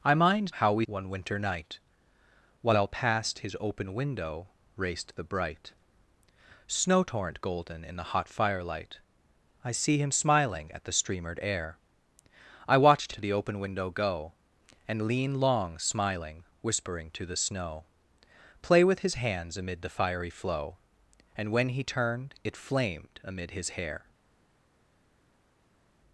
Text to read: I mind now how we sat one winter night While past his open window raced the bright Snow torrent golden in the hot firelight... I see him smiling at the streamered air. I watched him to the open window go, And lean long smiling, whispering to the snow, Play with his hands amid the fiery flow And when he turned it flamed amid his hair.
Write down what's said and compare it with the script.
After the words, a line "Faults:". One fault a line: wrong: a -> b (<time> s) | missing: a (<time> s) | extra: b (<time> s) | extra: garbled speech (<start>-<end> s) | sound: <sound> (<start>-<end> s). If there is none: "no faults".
I mind how we one winter night While past his open window raced the bright Snow torrent golden in the hot firelight... I see him smiling at the streamered air. I watched to the open window go, And lean long smiling, whispering to the snow, Play with his hands amid the fiery flow And when he turned it flamed amid his hair.
Faults:
missing: now (0.6 s)
missing: sat (0.8 s)
missing: him (13.1 s)